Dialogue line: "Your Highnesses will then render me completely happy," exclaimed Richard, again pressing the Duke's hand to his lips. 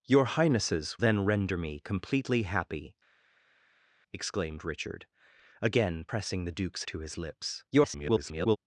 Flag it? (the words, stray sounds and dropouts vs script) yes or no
yes